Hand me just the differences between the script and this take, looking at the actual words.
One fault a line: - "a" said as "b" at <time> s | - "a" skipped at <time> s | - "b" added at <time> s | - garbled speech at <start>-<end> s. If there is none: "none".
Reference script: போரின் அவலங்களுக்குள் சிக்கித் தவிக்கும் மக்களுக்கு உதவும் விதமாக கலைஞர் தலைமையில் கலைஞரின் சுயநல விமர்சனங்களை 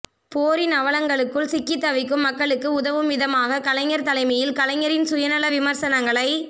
none